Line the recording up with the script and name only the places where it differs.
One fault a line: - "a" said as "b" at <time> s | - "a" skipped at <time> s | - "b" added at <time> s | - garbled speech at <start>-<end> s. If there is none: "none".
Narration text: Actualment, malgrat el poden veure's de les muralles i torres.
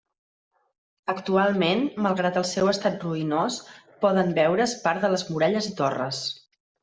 - "seu estat ruïnós" added at 2.5 s
- "part" added at 4.9 s